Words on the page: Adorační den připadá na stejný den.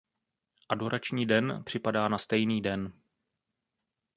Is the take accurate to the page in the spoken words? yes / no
yes